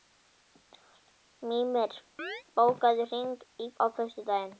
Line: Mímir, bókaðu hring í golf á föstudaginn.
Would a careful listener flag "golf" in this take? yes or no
yes